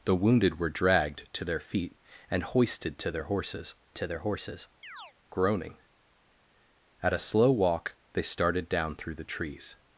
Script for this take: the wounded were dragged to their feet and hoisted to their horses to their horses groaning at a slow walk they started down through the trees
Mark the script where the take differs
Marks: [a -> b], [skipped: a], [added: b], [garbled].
the wounded were dragged to their feet and hoisted to their horses to their horses groaning at a slow walk they started down through the trees